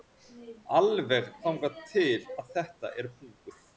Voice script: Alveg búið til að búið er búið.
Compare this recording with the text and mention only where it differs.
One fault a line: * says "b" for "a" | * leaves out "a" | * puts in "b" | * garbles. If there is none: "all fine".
* says "þangað" for "búið"
* says "þetta" for "búið"